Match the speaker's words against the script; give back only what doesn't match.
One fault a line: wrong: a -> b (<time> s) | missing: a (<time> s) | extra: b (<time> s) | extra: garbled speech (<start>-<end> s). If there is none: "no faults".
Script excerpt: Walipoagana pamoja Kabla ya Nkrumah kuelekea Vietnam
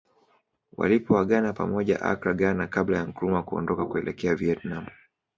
extra: Accra Ghana (2.0 s)
extra: kuondoka (3.4 s)